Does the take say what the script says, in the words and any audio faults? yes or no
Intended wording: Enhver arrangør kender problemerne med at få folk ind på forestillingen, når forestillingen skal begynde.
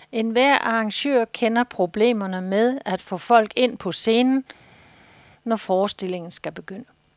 no